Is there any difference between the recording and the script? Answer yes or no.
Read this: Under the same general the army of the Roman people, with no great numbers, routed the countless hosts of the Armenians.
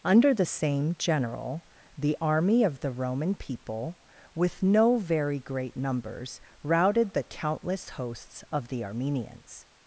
yes